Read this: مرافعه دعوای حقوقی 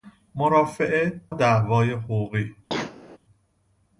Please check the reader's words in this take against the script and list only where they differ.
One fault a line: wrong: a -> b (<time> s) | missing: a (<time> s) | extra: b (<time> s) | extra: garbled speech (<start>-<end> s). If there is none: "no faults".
no faults